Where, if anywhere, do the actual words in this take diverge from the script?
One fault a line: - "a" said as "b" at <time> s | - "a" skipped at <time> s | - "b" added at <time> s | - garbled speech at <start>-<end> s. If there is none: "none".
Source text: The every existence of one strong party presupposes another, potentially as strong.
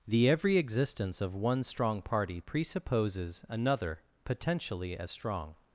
none